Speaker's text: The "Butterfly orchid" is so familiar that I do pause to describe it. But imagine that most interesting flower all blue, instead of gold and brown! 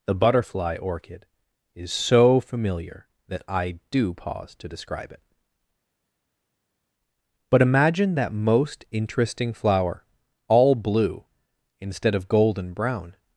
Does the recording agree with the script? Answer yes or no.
yes